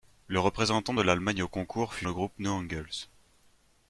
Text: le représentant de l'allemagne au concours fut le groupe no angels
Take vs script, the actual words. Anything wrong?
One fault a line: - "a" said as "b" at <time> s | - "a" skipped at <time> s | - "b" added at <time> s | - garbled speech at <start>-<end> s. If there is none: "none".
none